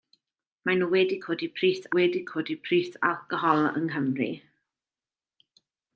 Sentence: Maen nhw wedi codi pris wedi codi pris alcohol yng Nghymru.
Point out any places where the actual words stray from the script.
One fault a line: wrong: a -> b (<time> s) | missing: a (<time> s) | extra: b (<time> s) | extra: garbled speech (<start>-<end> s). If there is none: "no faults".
no faults